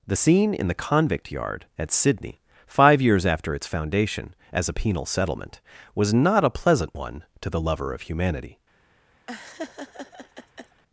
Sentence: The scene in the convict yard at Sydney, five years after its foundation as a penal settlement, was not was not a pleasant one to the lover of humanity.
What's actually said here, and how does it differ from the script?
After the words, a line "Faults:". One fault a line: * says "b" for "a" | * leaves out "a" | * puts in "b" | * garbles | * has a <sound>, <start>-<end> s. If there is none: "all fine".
The scene in the convict yard at Sydney, five years after its foundation as a penal settlement, was not a pleasant one to the lover of humanity.
Faults:
* leaves out "was not"
* has a laugh, 9.3-10.8 s